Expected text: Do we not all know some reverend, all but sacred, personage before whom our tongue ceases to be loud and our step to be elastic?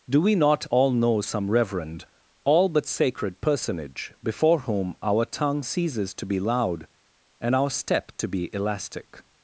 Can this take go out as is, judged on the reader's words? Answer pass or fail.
pass